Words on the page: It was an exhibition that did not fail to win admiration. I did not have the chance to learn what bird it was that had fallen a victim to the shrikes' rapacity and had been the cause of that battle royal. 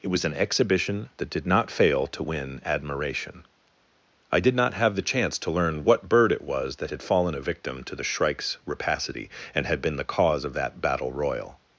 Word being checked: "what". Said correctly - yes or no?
yes